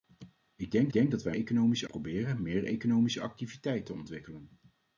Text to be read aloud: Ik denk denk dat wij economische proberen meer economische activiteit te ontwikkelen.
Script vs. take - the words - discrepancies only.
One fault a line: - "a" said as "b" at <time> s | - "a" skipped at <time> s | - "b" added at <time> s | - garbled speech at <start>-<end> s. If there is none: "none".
none